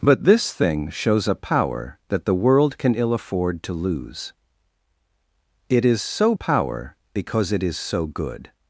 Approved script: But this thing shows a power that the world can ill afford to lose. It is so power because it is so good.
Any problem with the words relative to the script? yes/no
no